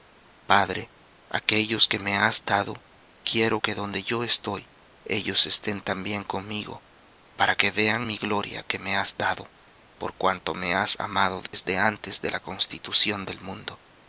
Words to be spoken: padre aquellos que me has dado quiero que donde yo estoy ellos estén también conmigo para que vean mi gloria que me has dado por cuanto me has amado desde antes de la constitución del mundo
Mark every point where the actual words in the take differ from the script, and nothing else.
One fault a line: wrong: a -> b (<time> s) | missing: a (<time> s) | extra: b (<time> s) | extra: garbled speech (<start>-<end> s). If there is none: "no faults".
no faults